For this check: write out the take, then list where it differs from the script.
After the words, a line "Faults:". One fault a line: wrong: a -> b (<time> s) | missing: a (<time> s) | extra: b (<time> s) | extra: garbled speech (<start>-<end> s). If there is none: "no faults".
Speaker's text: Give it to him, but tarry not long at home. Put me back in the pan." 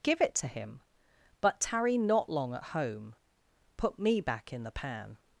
Give it to him, but tarry not long at home. Put me back in the pan."
Faults:
no faults